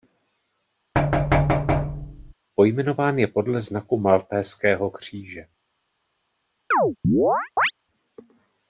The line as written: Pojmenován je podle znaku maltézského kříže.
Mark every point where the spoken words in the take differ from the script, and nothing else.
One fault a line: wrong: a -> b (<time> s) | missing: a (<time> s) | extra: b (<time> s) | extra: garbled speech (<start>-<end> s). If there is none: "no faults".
no faults